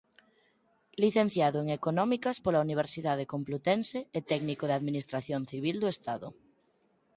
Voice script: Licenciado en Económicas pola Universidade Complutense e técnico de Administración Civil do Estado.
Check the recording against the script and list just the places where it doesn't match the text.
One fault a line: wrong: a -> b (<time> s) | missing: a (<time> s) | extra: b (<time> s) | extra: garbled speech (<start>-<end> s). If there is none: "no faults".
no faults